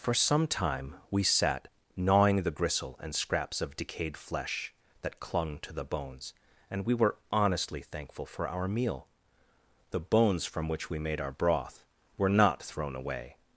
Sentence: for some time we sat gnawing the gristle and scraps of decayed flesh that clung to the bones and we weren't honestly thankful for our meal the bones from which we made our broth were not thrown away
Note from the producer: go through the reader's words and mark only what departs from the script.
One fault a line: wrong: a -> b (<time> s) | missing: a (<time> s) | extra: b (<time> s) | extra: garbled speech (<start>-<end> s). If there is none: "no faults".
wrong: weren't -> were (7.0 s)